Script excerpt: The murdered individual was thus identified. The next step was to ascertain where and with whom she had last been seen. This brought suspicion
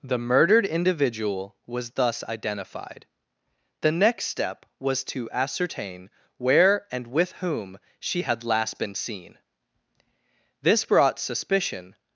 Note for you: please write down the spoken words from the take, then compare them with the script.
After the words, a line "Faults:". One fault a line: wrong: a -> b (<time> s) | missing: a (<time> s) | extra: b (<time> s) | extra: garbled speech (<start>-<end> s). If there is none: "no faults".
The murdered individual was thus identified. The next step was to ascertain where and with whom she had last been seen. This brought suspicion
Faults:
no faults